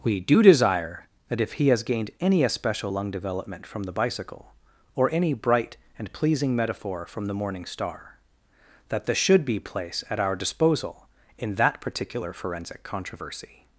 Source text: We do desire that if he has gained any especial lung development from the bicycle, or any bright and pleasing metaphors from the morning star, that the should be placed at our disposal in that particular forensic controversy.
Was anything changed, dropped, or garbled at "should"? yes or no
no